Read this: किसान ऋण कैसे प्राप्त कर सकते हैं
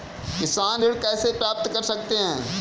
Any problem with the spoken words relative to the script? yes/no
no